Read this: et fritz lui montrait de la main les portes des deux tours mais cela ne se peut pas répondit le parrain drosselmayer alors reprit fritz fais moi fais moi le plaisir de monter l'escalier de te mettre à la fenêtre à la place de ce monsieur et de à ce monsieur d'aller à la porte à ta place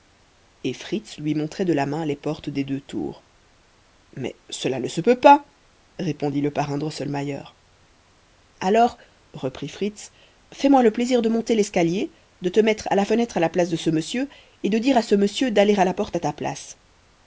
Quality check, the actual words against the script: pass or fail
fail